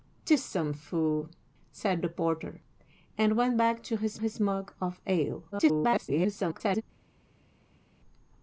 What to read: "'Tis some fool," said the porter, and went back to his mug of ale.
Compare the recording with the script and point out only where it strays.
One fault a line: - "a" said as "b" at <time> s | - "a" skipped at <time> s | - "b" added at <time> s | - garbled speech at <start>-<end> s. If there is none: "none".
- "his" added at 4.2 s
- garbled speech at 5.5-6.8 s